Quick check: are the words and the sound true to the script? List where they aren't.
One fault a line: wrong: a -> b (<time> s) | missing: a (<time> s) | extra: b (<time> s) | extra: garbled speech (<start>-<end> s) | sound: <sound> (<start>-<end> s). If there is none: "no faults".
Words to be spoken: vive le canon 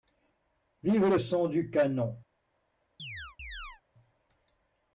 extra: son du (1.2 s)
sound: chirp (3.0-3.8 s)